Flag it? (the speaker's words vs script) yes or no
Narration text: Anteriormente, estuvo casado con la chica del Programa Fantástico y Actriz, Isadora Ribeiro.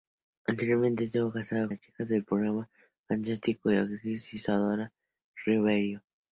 yes